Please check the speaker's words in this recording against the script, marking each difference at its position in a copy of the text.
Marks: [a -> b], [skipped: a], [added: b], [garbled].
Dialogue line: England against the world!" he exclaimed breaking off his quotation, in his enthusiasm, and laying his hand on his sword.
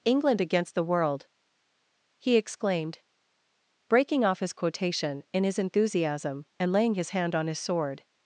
England against the world!" he exclaimed breaking off his quotation, in his enthusiasm, and laying his hand on his sword.